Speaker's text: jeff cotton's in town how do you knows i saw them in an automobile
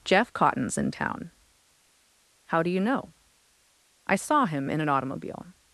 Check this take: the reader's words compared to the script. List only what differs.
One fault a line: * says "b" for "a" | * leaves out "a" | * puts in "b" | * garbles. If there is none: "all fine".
* says "know" for "knows"
* says "him" for "them"